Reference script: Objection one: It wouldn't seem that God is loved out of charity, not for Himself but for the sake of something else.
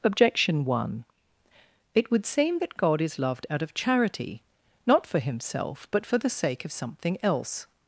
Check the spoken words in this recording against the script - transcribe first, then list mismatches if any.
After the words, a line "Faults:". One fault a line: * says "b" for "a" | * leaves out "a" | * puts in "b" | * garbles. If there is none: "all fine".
Objection one: It would seem that God is loved out of charity, not for Himself but for the sake of something else.
Faults:
* says "would" for "wouldn't"